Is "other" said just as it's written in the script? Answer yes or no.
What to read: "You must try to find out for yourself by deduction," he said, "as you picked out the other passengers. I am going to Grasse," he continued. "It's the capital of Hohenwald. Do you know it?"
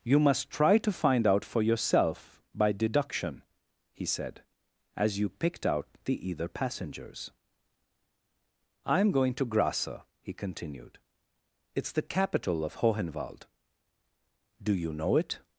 no